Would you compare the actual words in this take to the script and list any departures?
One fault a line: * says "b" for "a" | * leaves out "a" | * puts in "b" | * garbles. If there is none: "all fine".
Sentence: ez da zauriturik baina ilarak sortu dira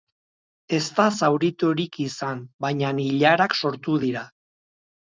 * puts in "izan"